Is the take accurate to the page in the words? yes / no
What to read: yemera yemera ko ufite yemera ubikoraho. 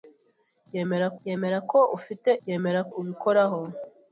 yes